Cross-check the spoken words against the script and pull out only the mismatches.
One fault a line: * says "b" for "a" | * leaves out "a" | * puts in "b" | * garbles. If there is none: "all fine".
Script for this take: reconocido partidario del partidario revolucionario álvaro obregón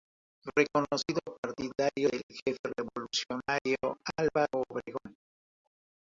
* says "jefe" for "partidario"